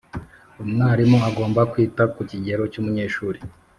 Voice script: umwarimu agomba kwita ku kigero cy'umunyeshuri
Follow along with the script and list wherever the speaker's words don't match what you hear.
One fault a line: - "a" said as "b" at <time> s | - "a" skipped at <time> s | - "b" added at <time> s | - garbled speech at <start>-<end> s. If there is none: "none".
none